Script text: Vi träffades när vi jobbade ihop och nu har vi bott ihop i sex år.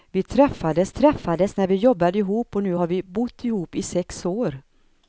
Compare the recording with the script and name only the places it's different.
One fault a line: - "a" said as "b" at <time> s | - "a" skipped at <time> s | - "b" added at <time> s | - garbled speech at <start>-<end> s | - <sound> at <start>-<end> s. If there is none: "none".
- "träffades" added at 0.9 s